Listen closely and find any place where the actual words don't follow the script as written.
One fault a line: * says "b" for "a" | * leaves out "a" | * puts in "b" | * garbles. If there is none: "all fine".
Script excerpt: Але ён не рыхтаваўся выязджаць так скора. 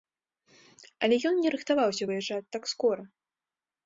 all fine